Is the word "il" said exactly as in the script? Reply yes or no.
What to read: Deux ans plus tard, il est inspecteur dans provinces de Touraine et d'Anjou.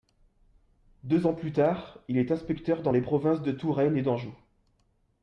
yes